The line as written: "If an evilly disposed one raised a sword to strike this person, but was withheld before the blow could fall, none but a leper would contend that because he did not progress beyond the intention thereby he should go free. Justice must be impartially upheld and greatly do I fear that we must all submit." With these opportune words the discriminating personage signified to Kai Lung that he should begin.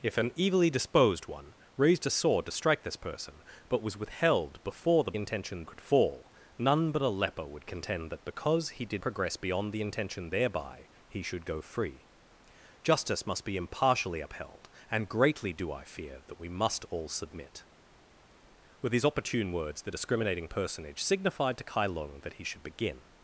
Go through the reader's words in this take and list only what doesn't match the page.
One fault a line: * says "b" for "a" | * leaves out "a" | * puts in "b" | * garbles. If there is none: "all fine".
* says "intention" for "blow"
* leaves out "not"